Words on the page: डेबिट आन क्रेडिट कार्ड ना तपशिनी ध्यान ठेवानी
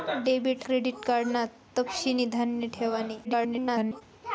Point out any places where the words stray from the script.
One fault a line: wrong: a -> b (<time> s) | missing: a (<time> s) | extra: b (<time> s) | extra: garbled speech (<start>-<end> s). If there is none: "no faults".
missing: आन (0.7 s)
extra: garbled speech (3.2-4.0 s)